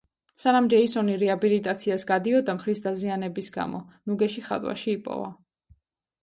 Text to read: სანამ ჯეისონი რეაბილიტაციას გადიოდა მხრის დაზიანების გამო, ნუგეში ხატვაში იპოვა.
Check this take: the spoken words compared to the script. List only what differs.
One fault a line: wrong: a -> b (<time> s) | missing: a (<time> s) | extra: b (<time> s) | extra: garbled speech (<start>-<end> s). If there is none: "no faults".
no faults